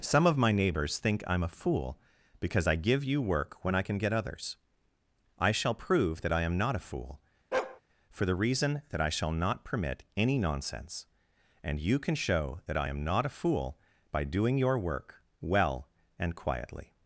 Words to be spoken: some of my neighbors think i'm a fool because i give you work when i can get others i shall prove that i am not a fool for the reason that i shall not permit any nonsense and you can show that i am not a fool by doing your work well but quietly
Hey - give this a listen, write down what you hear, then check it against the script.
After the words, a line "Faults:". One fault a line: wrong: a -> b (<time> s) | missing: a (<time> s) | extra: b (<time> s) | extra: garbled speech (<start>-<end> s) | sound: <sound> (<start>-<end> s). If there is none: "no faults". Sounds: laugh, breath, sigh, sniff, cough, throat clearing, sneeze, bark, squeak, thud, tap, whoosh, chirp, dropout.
some of my neighbors think i'm a fool because i give you work when i can get others i shall prove that i am not a fool for the reason that i shall not permit any nonsense and you can show that i am not a fool by doing your work well and quietly
Faults:
sound: bark (7.5-7.8 s)
wrong: but -> and (16.2 s)